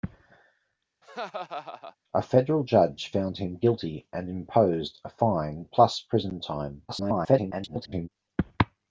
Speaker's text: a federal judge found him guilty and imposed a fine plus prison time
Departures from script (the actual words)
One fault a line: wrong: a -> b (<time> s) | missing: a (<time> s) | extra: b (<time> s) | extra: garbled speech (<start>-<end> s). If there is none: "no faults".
extra: garbled speech (6.9-8.1 s)